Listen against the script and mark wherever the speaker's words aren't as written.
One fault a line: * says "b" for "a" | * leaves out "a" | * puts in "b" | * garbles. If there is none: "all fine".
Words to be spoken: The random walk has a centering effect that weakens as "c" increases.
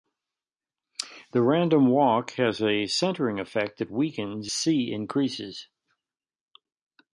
* leaves out "as"